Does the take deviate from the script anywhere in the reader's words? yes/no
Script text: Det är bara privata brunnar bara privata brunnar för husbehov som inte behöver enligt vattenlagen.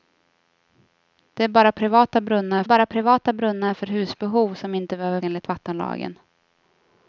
no